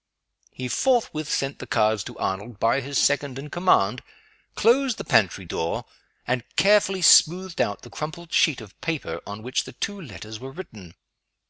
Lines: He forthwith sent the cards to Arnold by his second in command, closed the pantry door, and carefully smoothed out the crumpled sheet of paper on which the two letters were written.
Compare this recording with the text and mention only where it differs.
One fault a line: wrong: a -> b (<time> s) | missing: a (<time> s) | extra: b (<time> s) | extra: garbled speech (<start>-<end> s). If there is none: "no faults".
no faults